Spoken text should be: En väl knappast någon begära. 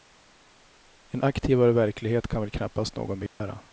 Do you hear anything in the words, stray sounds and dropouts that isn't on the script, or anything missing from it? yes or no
yes